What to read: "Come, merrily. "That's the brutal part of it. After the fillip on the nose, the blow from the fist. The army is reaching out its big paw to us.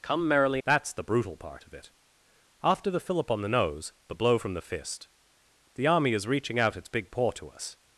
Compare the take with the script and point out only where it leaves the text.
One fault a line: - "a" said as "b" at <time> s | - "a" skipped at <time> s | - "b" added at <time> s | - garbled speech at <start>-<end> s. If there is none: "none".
none